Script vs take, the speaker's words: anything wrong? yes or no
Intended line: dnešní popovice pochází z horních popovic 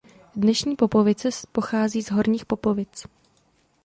no